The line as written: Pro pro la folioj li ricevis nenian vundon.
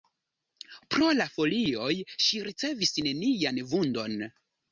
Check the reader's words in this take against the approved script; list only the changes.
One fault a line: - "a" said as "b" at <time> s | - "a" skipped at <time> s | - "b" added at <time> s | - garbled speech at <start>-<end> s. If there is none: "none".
- "pro" skipped at 1.1 s
- "li" said as "ŝi" at 2.3 s